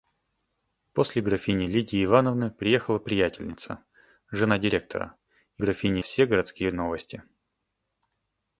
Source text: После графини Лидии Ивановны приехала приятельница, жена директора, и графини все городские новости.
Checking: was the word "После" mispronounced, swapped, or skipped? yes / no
no